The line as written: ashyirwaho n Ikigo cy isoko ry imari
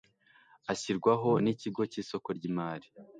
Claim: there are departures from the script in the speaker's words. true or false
false